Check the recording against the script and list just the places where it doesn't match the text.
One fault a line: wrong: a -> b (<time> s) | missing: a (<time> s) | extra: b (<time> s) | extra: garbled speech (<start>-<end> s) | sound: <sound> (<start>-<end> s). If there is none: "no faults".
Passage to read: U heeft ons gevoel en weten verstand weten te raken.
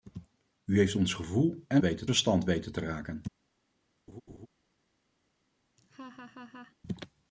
sound: laugh (4.1-4.5 s)
sound: laugh (5.8-6.8 s)